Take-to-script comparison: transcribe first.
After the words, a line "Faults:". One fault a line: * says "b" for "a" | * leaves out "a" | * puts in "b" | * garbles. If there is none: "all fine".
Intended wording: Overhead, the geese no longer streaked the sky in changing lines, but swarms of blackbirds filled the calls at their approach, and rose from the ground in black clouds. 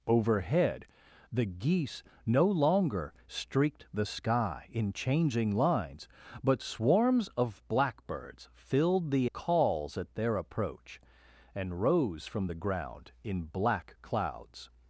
Overhead, the geese no longer streaked the sky in changing lines, but swarms of blackbirds filled the calls at their approach, and rose from the ground in black clouds.
Faults:
all fine